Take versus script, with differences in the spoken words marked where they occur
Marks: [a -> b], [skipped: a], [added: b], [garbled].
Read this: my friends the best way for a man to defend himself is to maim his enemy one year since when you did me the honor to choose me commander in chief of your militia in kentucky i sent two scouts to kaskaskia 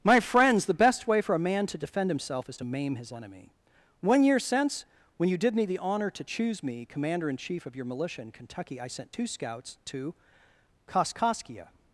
my friends the best way for a man to defend himself is to maim his enemy one year since when you did me the honor to choose me commander in chief of your militia in kentucky i sent two scouts to kaskaskia